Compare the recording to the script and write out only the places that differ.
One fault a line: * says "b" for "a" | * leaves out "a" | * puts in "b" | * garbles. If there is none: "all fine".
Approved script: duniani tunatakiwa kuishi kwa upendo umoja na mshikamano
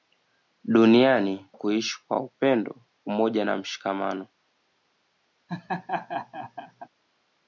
* leaves out "tunatakiwa"